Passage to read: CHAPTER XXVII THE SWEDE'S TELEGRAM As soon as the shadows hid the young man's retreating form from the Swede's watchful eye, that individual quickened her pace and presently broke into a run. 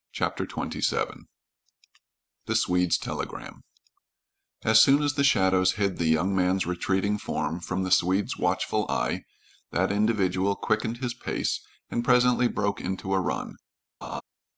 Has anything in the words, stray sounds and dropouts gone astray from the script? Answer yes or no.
yes